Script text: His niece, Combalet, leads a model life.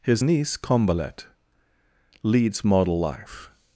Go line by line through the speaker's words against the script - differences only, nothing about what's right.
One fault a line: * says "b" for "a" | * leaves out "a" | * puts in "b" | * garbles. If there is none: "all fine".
* leaves out "a"